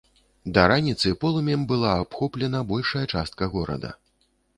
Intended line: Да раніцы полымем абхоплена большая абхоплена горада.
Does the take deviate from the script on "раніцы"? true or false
false